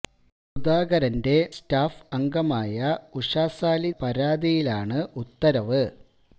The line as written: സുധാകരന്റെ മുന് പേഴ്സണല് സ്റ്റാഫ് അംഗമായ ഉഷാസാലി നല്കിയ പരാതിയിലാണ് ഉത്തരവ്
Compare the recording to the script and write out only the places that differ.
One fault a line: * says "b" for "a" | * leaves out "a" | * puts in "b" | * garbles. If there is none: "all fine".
* leaves out "മുന് പേഴ്സണല്"
* leaves out "നല്കിയ"